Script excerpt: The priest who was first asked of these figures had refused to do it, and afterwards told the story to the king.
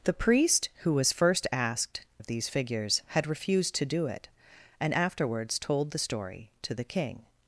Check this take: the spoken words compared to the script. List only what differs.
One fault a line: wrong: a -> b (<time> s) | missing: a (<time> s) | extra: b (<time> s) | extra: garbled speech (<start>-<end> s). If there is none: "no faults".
no faults